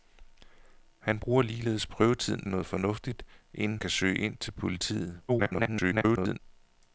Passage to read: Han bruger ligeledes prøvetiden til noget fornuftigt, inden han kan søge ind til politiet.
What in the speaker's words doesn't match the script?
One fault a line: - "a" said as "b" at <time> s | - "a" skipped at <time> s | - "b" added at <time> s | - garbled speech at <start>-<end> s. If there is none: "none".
- "til" skipped at 2.5 s
- "han" skipped at 3.8 s
- garbled speech at 5.3-6.4 s